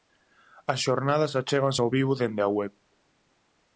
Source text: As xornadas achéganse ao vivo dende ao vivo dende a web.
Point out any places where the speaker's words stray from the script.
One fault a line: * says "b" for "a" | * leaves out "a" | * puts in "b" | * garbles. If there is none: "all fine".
* leaves out "ao vivo dende"